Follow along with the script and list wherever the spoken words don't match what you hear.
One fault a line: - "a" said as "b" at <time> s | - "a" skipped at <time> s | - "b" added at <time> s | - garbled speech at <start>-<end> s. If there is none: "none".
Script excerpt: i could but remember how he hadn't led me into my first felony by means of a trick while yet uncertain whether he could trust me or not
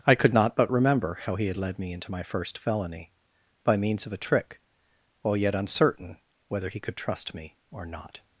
- "not" added at 0.3 s
- "hadn't" said as "had" at 1.5 s